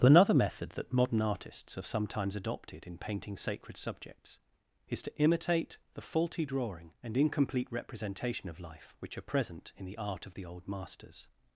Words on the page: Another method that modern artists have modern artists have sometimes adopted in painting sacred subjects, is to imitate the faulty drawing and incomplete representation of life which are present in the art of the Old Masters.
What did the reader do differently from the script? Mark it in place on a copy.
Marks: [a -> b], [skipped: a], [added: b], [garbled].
Another method that modern artists have [skipped: modern artists have] sometimes adopted in painting sacred subjects, is to imitate the faulty drawing and incomplete representation of life which are present in the art of the Old Masters.